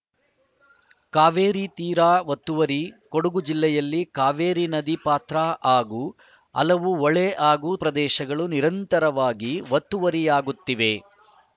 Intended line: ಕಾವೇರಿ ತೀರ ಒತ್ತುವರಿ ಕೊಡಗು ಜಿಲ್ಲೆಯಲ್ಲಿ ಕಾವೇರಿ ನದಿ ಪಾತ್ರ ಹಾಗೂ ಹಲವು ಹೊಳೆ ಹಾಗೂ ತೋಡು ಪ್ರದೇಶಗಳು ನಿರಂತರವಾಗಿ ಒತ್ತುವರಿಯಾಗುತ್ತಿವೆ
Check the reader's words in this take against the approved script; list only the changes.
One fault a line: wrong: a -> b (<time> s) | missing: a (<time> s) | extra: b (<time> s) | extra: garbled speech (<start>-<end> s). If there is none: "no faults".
missing: ತೋಡು (7.7 s)